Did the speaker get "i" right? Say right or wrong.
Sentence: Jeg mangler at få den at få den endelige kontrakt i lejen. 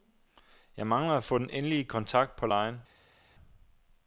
wrong